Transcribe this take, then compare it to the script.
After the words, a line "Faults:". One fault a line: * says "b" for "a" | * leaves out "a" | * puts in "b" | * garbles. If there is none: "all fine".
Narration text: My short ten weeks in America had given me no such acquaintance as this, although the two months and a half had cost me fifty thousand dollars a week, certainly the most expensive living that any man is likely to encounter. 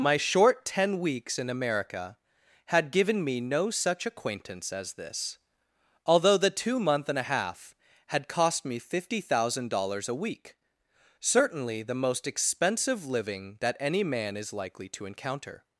My short ten weeks in America had given me no such acquaintance as this, although the two month and a half had cost me fifty thousand dollars a week, certainly the most expensive living that any man is likely to encounter.
Faults:
* says "month" for "months"